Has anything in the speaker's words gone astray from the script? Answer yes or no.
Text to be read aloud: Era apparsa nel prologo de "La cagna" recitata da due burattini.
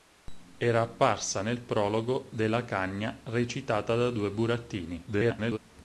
yes